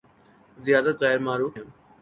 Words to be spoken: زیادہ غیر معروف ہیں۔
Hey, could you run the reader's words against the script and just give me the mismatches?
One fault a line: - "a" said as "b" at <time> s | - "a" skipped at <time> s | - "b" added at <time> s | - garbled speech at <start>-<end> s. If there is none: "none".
none